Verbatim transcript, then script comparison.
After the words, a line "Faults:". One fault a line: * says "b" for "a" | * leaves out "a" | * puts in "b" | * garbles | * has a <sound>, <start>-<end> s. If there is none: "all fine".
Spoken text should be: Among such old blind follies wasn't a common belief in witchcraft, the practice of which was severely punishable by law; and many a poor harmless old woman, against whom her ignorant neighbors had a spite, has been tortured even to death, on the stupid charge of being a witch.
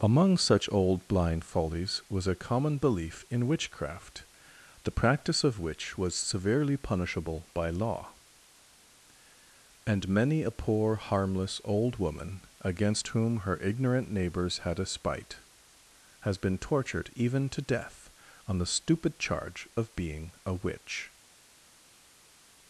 Among such old blind follies was a common belief in witchcraft, the practice of which was severely punishable by law; and many a poor harmless old woman, against whom her ignorant neighbors had a spite, has been tortured even to death, on the stupid charge of being a witch.
Faults:
* says "was" for "wasn't"